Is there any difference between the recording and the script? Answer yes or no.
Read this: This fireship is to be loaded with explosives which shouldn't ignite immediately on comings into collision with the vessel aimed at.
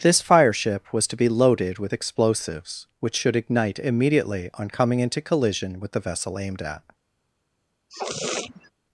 yes